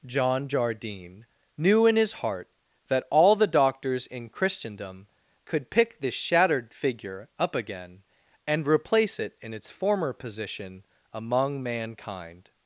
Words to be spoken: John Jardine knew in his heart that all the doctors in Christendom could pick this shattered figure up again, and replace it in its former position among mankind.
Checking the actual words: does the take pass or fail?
pass